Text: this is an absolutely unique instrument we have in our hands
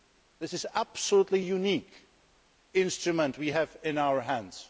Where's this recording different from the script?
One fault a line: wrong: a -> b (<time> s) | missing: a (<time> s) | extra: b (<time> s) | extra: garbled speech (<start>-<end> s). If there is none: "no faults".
no faults